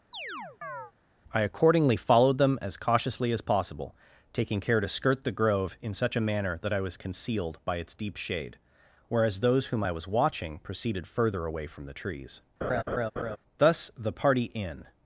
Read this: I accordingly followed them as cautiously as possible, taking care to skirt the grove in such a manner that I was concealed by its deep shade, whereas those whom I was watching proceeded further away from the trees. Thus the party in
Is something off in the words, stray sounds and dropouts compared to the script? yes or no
yes